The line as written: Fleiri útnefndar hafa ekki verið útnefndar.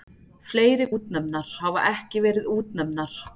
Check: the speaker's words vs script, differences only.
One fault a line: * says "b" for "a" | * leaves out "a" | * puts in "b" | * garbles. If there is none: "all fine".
all fine